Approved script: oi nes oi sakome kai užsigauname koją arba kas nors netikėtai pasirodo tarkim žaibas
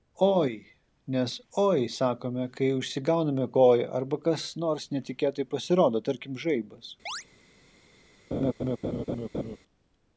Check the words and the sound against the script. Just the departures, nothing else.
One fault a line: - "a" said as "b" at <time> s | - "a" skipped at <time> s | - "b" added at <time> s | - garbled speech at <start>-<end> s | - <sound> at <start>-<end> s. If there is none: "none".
- chirp at 7.1-7.2 s
- laugh at 8.3-9.6 s